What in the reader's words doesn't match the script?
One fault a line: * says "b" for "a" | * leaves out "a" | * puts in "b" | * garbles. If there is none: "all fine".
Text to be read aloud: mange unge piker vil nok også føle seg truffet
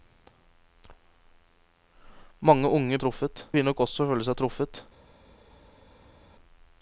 * says "truffet" for "piker"